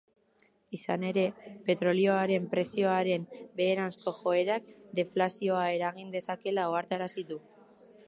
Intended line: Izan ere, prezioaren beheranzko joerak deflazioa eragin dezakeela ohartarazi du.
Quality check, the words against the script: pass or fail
fail